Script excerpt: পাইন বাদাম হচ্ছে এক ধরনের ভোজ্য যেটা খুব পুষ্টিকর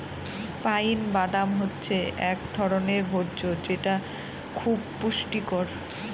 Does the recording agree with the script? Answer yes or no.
yes